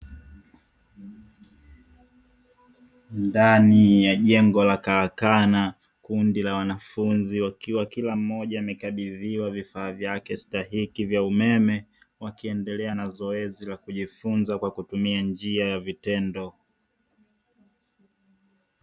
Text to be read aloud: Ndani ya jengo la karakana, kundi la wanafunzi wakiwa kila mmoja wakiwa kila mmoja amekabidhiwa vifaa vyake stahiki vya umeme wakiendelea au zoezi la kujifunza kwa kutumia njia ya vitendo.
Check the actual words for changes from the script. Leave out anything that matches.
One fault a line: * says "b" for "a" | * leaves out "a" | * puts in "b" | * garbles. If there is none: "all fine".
* leaves out "wakiwa kila mmoja"
* says "na" for "au"